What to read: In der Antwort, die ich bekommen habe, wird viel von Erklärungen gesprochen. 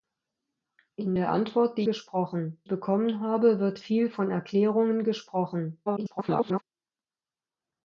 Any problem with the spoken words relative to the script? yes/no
yes